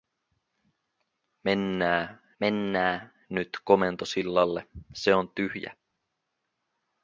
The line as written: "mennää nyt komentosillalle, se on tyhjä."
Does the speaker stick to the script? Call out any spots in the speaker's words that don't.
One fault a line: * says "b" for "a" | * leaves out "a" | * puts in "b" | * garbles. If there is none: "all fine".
* puts in "mennää"